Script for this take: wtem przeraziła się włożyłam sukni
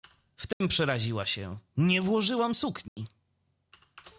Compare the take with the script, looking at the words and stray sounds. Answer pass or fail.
fail